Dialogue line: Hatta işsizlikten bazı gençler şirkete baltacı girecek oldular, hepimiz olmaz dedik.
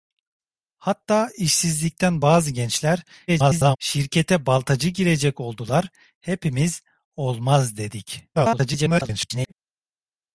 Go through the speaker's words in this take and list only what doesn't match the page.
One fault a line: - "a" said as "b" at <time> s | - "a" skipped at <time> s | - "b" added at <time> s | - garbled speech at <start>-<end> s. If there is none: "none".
- garbled speech at 3.3-3.8 s
- garbled speech at 8.3-9.5 s